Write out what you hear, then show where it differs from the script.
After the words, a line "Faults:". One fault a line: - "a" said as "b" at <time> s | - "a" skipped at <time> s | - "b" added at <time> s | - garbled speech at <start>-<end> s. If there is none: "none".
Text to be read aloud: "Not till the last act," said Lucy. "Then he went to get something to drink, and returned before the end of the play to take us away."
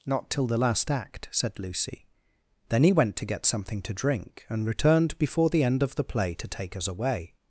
"Not till the last act," said Lucy. "Then he went to get something to drink, and returned before the end of the play to take us away."
Faults:
none